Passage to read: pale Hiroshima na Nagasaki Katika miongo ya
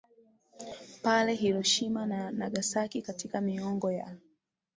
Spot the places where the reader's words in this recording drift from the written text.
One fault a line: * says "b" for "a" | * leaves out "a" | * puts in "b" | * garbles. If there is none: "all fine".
all fine